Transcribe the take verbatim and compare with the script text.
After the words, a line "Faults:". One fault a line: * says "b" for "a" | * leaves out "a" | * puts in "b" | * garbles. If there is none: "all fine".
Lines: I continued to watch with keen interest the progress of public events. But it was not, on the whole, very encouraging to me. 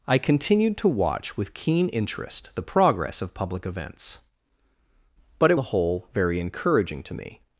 I continued to watch with keen interest the progress of public events. But it the whole, very encouraging to me.
Faults:
* leaves out "was not on"